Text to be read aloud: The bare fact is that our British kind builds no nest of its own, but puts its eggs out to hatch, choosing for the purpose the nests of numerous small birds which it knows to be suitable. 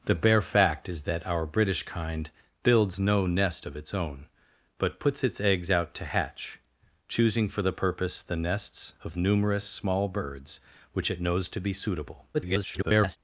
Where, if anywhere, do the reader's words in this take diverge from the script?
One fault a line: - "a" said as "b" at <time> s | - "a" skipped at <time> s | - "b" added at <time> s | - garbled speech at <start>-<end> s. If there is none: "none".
- garbled speech at 12.3-13.2 s